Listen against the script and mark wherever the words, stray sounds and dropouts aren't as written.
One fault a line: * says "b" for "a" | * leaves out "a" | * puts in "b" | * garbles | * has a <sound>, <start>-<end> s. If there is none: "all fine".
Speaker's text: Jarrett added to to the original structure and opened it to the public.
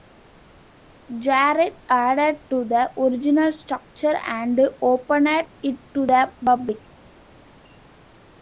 * leaves out "to"